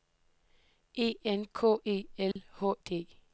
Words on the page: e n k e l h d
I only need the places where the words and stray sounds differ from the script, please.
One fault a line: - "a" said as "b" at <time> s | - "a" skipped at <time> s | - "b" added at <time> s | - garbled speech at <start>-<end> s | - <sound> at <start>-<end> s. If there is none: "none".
- dropout at 2.3-2.4 s